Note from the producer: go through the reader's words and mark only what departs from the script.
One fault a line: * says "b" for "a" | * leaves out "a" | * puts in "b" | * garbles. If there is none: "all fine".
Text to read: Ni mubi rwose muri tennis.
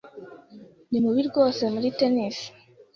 all fine